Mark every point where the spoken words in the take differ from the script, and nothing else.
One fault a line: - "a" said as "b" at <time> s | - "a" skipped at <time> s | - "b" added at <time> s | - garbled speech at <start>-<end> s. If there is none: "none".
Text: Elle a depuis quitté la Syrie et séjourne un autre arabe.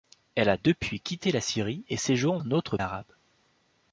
none